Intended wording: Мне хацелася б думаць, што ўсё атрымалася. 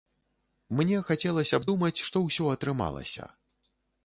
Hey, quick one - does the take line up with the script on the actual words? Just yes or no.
yes